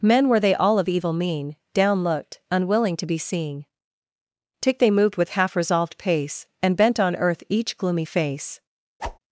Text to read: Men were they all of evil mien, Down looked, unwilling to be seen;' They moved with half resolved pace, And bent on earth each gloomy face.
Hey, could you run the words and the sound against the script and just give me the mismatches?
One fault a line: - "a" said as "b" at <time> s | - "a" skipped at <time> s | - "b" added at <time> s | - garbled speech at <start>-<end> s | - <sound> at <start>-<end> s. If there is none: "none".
- "tick" added at 4.6 s
- whoosh at 9.0-9.2 s